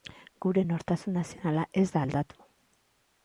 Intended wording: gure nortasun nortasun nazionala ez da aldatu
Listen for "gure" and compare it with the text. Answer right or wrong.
right